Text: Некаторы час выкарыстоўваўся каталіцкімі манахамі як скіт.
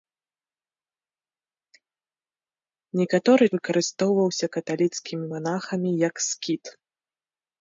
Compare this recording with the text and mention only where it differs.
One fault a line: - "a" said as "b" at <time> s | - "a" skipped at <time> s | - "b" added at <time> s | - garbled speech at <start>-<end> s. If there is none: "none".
- "час" skipped at 3.5 s